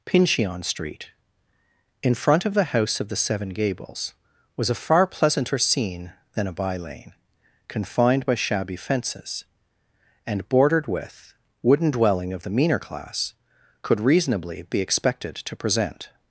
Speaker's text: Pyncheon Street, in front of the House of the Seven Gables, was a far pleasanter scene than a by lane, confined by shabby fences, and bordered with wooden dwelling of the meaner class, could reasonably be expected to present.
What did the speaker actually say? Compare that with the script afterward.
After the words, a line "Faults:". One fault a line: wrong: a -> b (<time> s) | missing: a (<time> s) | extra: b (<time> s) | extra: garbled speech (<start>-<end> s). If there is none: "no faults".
Pyncheon Street, in front of the House of the Seven Gables, was a far pleasanter scene than a by lane, confined by shabby fences, and bordered with wooden dwelling of the meaner class, could reasonably be expected to present.
Faults:
no faults